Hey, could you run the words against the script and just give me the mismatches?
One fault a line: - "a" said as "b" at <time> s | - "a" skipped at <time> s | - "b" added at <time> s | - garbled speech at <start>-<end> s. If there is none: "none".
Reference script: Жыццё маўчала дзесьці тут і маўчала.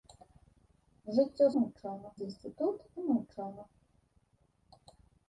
none